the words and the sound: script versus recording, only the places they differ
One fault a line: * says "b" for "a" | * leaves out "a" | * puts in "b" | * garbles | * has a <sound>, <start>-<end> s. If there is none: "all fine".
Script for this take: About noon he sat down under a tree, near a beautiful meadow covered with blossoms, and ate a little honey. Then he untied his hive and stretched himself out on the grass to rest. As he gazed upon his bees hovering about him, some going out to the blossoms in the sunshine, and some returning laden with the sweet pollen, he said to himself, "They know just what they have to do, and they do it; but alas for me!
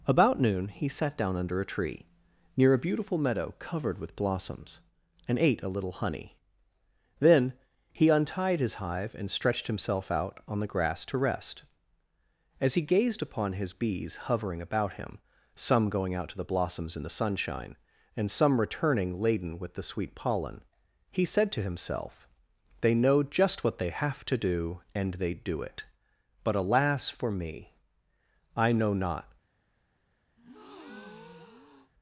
* puts in "I know not"
* has a breath, 30.4-31.9 s